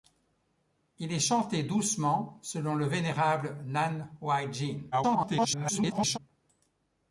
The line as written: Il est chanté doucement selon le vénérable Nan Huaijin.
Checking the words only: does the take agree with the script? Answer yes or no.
no